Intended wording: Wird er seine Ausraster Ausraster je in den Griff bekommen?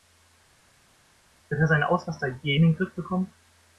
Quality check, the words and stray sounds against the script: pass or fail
fail